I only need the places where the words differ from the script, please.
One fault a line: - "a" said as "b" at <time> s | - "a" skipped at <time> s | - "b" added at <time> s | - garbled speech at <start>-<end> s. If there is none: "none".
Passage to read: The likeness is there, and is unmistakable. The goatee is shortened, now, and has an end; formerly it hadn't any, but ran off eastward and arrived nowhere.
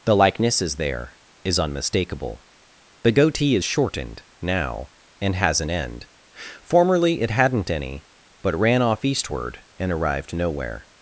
- "and" skipped at 1.2 s